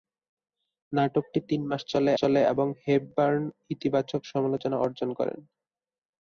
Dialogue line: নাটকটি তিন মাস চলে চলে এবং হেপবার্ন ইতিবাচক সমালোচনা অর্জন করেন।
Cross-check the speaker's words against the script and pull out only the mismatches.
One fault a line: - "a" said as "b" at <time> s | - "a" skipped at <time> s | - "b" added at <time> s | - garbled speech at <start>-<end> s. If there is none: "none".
none